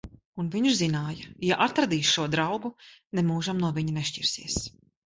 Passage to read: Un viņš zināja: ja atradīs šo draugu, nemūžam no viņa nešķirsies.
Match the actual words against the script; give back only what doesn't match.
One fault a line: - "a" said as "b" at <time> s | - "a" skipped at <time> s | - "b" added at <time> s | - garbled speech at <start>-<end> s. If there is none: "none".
none